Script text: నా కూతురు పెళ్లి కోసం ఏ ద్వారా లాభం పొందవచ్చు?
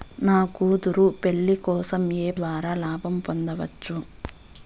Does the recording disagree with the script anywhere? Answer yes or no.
no